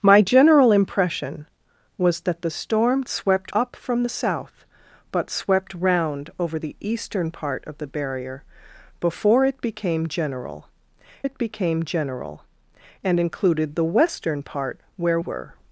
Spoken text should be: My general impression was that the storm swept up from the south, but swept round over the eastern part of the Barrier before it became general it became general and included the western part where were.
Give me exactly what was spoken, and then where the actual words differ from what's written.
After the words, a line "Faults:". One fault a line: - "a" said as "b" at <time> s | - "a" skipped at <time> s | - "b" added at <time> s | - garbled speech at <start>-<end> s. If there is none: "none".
My general impression was that the storm swept up from the south, but swept round over the eastern part of the Barrier before it became general it became general and included the western part where were.
Faults:
none